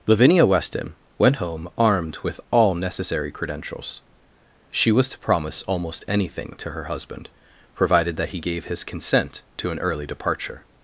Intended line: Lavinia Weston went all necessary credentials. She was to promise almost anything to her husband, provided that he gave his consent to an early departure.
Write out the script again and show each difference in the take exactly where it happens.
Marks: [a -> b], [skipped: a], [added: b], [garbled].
Lavinia Weston went [added: home armed with] all necessary credentials. She was to promise almost anything to her husband, provided that he gave his consent to an early departure.